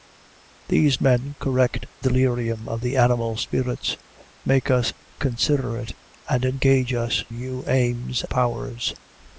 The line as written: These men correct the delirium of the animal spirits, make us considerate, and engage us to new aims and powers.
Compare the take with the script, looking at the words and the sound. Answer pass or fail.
fail